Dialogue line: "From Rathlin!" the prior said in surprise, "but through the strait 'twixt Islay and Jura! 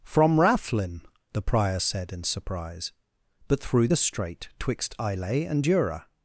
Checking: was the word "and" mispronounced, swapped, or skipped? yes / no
no